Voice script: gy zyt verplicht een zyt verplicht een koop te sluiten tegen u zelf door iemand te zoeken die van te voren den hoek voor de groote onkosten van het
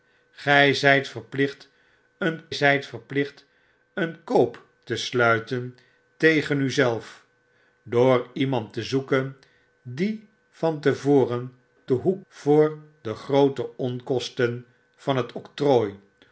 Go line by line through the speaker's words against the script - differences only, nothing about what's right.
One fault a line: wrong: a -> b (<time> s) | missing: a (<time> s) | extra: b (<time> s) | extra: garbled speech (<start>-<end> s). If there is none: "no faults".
no faults